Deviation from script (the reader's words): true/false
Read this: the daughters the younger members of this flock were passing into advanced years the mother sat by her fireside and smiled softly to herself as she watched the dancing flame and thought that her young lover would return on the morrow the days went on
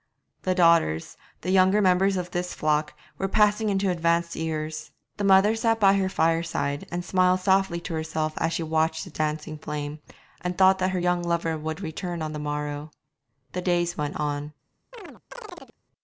false